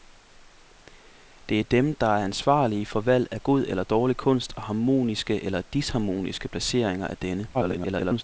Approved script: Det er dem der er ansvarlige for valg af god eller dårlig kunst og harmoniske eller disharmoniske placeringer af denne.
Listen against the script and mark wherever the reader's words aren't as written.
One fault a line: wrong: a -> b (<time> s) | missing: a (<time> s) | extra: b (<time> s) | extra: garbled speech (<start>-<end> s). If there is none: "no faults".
extra: garbled speech (7.5-8.2 s)